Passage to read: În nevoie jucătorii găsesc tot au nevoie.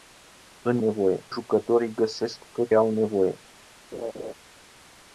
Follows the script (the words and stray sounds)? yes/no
no